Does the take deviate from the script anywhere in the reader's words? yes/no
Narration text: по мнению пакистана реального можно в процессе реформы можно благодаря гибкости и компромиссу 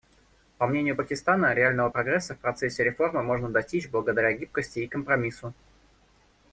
yes